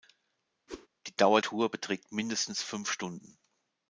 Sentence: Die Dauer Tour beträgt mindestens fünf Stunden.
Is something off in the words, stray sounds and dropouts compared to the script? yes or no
yes